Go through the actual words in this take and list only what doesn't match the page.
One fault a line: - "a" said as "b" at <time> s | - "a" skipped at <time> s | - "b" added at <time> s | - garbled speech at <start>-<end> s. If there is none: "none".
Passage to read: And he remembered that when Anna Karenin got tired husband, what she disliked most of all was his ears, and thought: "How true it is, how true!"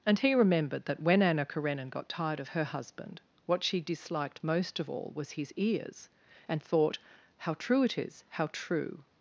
- "of her" added at 2.4 s